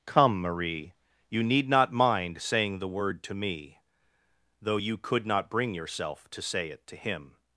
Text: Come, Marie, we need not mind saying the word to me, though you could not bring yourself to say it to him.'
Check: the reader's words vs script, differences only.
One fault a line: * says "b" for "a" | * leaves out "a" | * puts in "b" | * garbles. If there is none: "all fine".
* says "you" for "we"